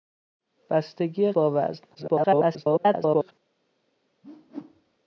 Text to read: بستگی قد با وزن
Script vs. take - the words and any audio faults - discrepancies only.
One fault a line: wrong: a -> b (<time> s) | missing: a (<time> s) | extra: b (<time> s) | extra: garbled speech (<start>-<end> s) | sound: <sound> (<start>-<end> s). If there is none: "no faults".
missing: قد (1.3 s)
extra: garbled speech (1.9-3.3 s)
sound: whoosh (4.2-5.0 s)